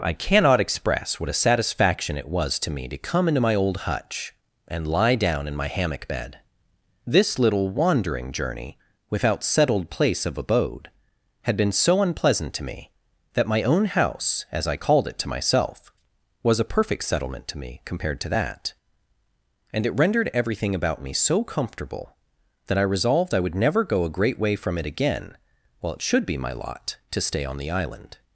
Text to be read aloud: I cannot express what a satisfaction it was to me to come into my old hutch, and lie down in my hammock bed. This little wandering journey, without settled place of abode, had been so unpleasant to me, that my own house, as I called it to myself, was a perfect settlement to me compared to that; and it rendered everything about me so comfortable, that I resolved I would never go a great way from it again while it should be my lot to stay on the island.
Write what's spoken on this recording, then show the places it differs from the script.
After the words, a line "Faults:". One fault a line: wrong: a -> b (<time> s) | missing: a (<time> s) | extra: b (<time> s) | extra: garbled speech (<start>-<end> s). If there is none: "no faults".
I cannot express what a satisfaction it was to me to come into my old hutch, and lie down in my hammock bed. This little wandering journey, without settled place of abode, had been so unpleasant to me, that my own house, as I called it to myself, was a perfect settlement to me compared to that; and it rendered everything about me so comfortable, that I resolved I would never go a great way from it again while it should be my lot to stay on the island.
Faults:
no faults